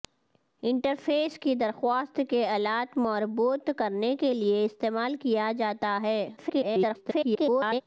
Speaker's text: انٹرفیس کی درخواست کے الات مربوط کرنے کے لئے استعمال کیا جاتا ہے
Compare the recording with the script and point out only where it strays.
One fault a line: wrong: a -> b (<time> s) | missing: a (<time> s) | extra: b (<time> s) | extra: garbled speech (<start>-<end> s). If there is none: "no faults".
extra: garbled speech (6.4-7.8 s)